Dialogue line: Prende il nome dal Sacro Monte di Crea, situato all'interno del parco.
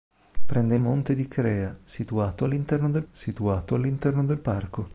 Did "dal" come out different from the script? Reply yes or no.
yes